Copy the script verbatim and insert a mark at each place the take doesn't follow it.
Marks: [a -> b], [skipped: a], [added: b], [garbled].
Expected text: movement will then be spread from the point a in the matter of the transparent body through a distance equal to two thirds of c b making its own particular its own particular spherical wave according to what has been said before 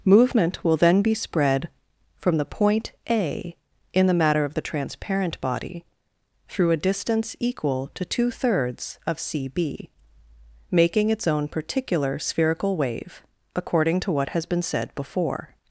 movement will then be spread from the point a in the matter of the transparent body through a distance equal to two thirds of c b making its own particular [skipped: its own particular] spherical wave according to what has been said before